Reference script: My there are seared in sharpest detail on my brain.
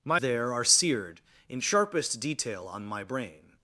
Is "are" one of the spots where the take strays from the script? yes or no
no